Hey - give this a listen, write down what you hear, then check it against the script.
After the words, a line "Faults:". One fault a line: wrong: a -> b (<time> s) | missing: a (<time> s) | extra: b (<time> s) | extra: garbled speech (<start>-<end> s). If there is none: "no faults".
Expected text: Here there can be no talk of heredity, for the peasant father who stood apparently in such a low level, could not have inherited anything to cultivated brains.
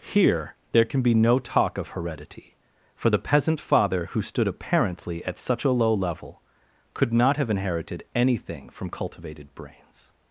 Here there can be no talk of heredity, for the peasant father who stood apparently at such a low level, could not have inherited anything from cultivated brains.
Faults:
wrong: in -> at (5.2 s)
wrong: to -> from (8.7 s)